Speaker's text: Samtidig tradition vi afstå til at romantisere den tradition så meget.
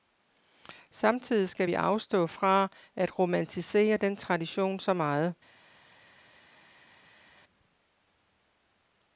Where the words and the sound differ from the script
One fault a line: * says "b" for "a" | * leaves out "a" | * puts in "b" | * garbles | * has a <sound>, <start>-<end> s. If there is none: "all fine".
* says "skal" for "tradition"
* says "fra" for "til"